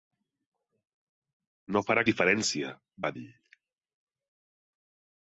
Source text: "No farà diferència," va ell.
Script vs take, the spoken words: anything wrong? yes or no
no